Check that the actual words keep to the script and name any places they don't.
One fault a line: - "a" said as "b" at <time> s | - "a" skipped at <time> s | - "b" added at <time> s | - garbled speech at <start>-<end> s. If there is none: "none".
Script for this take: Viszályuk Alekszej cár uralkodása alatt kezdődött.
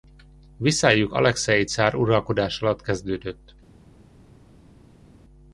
none